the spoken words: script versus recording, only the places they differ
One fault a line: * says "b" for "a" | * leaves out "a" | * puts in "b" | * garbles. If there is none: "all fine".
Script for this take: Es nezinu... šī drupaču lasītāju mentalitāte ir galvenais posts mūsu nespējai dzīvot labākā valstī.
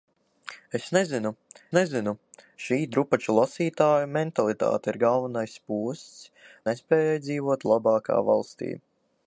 * puts in "nezinu"
* leaves out "mūsu"